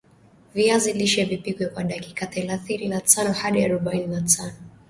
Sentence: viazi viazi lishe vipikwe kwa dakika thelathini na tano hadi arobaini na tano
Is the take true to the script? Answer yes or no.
no